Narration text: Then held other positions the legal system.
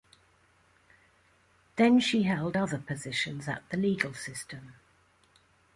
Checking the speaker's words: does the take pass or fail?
fail